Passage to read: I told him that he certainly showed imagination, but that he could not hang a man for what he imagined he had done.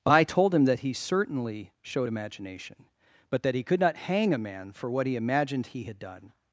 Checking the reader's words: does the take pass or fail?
pass